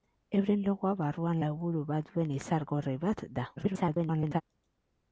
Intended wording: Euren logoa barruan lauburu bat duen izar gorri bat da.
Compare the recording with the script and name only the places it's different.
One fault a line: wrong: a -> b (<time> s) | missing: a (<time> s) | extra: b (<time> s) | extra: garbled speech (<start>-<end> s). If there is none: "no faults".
extra: garbled speech (3.6-4.4 s)